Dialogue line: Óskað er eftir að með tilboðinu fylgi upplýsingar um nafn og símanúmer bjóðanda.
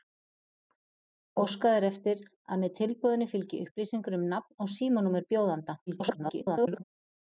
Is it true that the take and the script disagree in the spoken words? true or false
true